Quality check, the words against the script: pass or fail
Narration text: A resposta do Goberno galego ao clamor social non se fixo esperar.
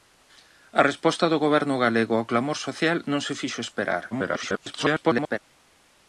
fail